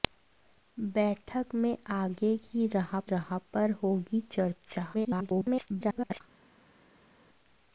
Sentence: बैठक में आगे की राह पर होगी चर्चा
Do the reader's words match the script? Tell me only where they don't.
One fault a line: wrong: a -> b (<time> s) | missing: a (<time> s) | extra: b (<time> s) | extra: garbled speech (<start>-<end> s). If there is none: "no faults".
extra: राह (3.0 s)
extra: garbled speech (4.9-6.2 s)